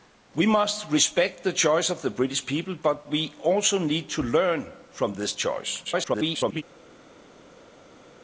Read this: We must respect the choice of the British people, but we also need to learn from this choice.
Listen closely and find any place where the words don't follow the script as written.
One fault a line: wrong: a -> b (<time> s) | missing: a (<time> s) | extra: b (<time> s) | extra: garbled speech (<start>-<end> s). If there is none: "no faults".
extra: garbled speech (5.8-6.6 s)